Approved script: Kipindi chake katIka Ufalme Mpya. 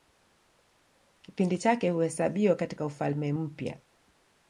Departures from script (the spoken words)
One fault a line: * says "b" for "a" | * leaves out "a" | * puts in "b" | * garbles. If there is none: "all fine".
* puts in "huhesabiwa"